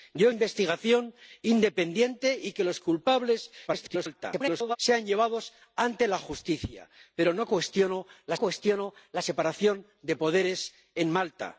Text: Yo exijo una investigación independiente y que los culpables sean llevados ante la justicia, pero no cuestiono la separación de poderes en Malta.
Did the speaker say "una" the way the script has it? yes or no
no